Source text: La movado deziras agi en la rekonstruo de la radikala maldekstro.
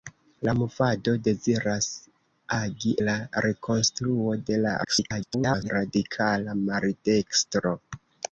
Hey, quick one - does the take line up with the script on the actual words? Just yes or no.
no